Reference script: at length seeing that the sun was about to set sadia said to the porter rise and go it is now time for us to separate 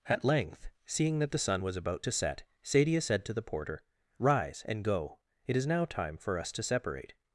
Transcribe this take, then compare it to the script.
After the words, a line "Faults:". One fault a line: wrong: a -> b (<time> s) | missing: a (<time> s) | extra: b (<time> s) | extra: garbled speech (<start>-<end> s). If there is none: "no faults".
at length seeing that the sun was about to set sadia said to the porter rise and go it is now time for us to separate
Faults:
no faults